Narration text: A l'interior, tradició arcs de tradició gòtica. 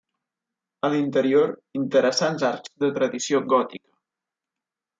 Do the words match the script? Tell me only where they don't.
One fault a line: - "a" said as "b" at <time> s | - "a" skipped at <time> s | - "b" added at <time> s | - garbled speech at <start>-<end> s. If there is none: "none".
- "tradició" said as "interessants" at 1.8 s